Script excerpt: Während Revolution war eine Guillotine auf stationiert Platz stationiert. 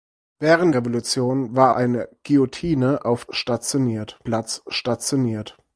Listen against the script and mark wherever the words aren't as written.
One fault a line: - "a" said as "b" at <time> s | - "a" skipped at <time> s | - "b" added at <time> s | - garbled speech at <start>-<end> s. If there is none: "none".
none